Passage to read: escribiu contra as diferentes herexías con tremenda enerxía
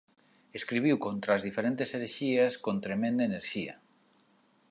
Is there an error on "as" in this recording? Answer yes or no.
no